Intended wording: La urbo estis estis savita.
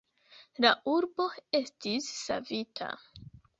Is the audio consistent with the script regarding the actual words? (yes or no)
no